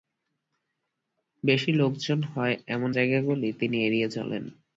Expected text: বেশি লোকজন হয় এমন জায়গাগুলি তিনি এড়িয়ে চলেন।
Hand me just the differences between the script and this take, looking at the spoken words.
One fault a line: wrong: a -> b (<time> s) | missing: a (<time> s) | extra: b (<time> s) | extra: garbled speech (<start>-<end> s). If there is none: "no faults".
no faults